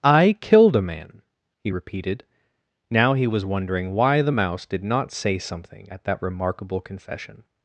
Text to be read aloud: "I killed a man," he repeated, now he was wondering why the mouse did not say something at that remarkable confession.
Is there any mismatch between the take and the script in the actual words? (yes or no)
no